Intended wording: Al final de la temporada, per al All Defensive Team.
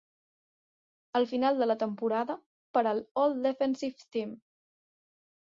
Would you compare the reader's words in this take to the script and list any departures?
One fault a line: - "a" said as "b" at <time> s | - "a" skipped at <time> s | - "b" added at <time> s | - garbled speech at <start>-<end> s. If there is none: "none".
none